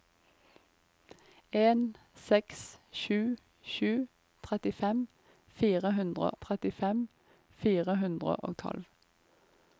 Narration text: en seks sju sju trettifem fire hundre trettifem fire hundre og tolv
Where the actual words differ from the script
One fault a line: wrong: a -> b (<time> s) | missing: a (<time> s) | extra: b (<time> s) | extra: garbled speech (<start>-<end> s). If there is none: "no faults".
no faults